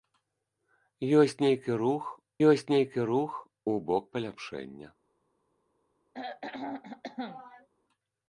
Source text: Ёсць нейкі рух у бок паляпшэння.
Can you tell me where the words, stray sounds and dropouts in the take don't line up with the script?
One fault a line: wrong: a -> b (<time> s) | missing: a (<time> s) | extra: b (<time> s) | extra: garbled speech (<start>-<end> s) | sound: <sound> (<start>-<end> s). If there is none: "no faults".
extra: ёсць нейкі рух (2.5 s)
sound: throat clearing (6.1-7.7 s)